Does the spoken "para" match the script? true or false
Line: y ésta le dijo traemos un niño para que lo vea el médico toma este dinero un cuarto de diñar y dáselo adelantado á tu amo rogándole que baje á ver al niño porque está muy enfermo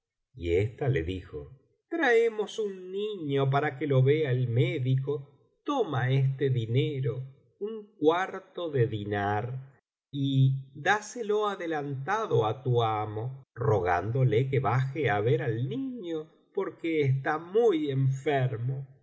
true